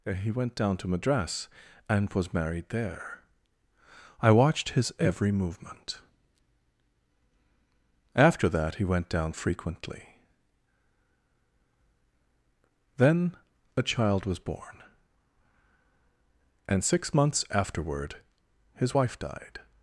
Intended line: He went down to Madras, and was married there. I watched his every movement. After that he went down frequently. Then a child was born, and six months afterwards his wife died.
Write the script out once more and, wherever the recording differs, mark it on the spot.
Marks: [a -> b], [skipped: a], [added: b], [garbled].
He went down to Madras, and was married there. I watched his every movement. After that he went down frequently. Then a child was born, and six months [afterwards -> afterward] his wife died.